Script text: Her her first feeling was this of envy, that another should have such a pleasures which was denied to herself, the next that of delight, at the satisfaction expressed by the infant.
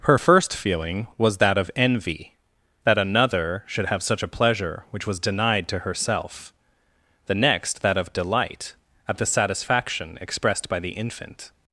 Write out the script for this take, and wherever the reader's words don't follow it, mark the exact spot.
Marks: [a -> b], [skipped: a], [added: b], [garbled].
Her [skipped: her] first feeling was [this -> that] of envy, that another should have such a [pleasures -> pleasure] which was denied to herself, the next that of delight, at the satisfaction expressed by the infant.